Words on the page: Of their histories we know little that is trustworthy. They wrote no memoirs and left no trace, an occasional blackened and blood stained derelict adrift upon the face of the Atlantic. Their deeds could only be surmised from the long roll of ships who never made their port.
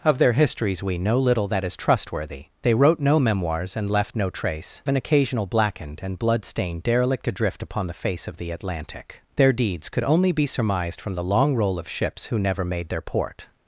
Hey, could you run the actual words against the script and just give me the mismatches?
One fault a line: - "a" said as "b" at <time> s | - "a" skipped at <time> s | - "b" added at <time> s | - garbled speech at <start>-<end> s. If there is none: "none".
none